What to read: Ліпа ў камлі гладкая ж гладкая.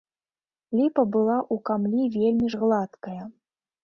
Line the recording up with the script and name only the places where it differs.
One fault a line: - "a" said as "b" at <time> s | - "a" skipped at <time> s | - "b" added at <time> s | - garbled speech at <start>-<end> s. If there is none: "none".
- "была" added at 1.1 s
- "гладкая" said as "вельмі" at 2.1 s